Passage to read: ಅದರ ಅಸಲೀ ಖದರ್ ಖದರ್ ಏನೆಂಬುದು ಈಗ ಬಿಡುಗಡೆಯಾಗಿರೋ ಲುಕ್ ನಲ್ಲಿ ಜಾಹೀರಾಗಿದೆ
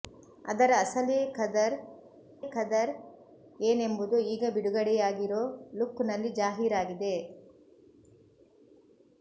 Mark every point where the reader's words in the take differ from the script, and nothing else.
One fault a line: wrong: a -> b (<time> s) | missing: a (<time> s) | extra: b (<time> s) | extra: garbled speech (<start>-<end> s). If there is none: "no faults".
no faults